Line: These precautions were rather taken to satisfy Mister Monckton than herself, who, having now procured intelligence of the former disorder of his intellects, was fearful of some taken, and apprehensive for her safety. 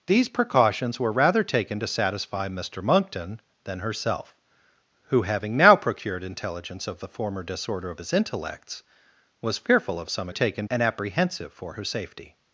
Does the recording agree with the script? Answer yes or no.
yes